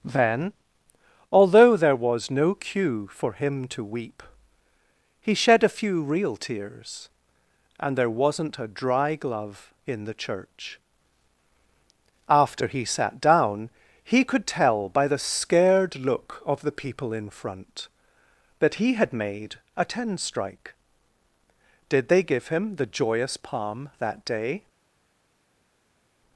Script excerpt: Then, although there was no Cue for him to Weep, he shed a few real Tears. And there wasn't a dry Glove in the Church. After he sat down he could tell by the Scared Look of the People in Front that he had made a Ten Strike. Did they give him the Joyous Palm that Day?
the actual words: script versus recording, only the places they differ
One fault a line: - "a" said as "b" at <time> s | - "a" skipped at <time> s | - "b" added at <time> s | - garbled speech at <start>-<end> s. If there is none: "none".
none